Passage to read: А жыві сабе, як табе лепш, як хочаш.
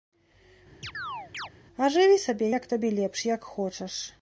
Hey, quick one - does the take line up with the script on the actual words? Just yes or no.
yes